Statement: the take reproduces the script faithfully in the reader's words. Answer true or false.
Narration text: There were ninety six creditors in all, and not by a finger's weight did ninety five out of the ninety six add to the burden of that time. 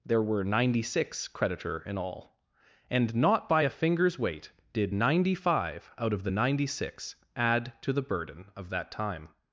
false